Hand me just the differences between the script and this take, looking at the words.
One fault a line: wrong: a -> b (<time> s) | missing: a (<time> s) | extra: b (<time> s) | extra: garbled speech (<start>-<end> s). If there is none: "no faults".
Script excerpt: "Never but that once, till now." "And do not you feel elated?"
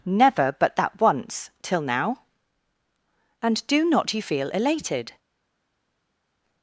no faults